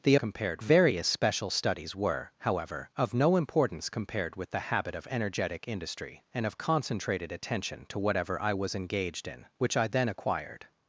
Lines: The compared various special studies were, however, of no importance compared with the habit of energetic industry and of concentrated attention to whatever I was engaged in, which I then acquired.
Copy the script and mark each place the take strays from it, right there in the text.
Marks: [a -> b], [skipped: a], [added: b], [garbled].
The compared various special studies were, however, of no importance compared with the habit of energetic industry and of concentrated attention to whatever I was engaged in, which I then acquired.